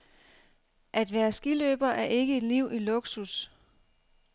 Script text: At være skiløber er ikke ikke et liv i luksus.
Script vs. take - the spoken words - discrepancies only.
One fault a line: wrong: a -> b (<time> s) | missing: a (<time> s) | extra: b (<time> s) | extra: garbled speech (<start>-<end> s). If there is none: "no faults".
missing: ikke (2.4 s)